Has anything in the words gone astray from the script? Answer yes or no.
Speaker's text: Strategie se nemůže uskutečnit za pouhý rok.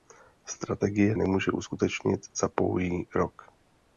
yes